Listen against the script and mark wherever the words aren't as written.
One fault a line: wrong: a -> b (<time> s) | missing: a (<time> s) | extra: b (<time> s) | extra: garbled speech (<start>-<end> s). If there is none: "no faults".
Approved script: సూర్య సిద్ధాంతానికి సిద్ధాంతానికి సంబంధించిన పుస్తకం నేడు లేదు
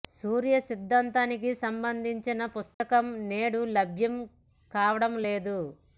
missing: సిద్ధాంతానికి (1.5 s)
extra: లభ్యం కావడం (3.8 s)